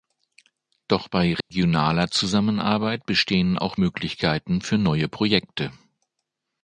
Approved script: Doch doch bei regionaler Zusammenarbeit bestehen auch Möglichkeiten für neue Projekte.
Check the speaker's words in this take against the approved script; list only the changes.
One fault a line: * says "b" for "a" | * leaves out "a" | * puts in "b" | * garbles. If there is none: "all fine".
* leaves out "doch"